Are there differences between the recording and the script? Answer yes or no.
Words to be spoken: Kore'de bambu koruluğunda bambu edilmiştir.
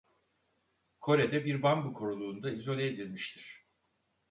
yes